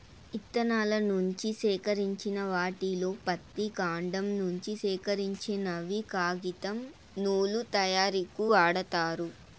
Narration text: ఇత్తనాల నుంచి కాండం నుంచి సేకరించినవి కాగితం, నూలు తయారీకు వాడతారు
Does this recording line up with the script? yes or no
no